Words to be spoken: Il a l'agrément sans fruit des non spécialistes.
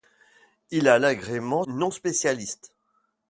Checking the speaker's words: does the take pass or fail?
fail